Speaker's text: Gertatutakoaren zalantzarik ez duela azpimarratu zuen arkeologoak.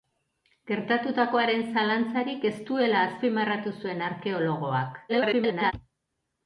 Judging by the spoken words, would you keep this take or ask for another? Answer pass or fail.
fail